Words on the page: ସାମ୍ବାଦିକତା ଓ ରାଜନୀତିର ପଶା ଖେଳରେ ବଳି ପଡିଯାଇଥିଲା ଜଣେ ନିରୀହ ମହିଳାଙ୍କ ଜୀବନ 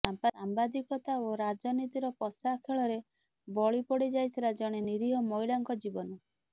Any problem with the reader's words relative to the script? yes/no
no